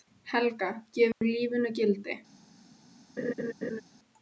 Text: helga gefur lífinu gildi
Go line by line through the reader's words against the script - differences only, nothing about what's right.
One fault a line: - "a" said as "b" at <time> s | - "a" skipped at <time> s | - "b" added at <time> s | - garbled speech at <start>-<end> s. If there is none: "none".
none